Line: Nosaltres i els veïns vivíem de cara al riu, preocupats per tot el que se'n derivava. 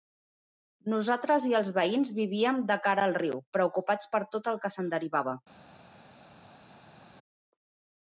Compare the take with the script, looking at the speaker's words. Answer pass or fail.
pass